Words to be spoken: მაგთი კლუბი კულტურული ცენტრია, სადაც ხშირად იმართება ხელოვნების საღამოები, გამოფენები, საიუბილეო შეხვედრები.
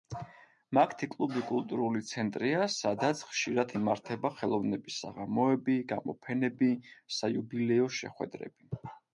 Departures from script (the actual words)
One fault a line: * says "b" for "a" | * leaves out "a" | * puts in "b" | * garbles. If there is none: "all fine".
all fine